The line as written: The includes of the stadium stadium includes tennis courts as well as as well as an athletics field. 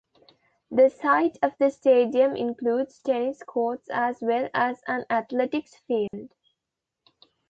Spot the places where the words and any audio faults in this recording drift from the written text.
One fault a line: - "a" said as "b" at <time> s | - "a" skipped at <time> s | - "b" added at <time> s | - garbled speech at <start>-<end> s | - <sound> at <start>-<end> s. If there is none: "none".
- "includes" said as "site" at 0.9 s
- "stadium" skipped at 2.4 s
- "as well as" skipped at 4.8 s
- dropout at 6.1-6.1 s